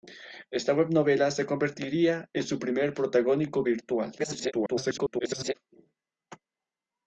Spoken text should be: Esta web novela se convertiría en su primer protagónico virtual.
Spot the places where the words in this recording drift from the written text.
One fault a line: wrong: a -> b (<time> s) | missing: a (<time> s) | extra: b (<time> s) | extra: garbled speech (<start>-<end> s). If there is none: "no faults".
extra: garbled speech (4.2-5.5 s)